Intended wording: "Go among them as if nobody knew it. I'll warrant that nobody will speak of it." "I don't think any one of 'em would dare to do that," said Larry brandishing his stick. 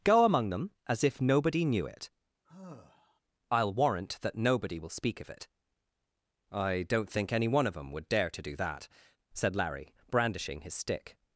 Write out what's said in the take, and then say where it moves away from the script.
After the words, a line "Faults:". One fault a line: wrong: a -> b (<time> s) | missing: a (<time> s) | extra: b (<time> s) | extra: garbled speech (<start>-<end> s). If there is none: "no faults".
"Go among them as if nobody knew it. I'll warrant that nobody will speak of it." "I don't think any one of 'em would dare to do that," said Larry brandishing his stick.
Faults:
no faults